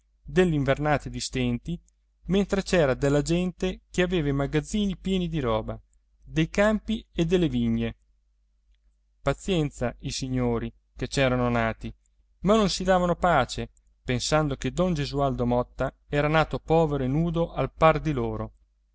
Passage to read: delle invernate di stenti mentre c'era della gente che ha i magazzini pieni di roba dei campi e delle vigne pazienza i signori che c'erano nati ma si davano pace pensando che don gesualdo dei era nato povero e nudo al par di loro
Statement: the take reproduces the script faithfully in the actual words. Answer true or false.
false